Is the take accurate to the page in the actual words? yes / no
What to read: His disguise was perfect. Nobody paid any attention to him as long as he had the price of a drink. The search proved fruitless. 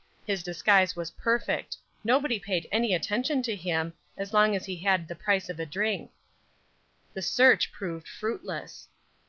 yes